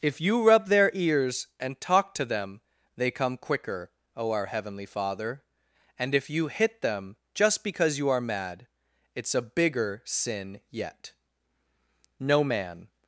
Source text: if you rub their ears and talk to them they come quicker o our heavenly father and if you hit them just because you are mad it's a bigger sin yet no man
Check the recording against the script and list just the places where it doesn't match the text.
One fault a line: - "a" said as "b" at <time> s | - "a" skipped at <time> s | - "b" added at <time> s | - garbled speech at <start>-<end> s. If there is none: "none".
none